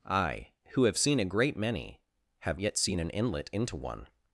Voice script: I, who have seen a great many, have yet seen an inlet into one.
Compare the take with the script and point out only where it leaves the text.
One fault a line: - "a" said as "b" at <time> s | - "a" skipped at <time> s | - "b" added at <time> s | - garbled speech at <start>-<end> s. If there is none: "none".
none